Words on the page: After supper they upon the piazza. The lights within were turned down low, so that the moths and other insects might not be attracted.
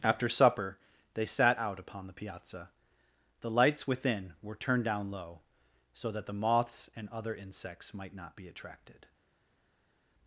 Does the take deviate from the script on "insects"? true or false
false